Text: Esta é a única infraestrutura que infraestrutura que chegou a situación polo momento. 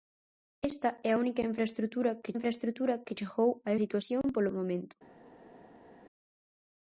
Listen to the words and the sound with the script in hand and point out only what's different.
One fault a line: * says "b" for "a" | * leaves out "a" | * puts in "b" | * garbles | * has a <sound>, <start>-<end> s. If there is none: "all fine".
all fine